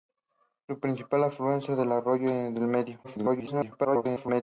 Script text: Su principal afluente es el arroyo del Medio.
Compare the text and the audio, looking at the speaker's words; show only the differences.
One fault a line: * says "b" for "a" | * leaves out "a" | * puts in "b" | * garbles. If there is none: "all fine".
* garbles